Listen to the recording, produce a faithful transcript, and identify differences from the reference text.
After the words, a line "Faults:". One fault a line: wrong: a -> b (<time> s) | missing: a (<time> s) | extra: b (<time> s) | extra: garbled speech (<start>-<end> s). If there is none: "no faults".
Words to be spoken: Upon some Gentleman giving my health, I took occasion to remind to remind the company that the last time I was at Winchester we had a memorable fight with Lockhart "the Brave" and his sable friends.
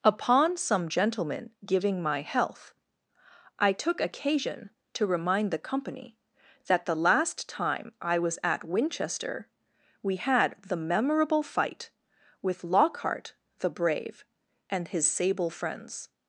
Upon some Gentleman giving my health, I took occasion to remind the company that the last time I was at Winchester we had the memorable fight with Lockhart "the Brave" and his sable friends.
Faults:
missing: to remind (5.5 s)
wrong: a -> the (10.6 s)